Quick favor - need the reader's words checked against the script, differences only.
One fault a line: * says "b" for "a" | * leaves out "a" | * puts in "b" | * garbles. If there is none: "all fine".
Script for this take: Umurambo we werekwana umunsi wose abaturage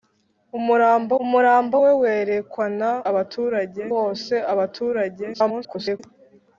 * puts in "umurambo"
* says "abaturage" for "umunsi"
* garbles